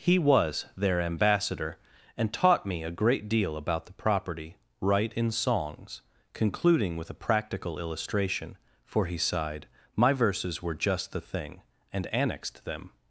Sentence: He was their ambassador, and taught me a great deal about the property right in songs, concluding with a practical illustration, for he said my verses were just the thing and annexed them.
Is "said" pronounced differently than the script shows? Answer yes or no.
yes